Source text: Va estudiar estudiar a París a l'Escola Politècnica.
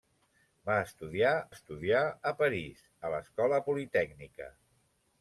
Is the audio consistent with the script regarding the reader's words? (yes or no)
yes